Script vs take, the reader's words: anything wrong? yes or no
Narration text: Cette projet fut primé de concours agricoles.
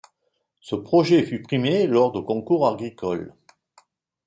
yes